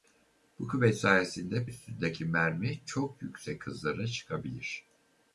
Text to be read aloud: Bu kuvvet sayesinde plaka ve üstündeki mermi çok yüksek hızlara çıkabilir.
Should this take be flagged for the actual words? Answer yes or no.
yes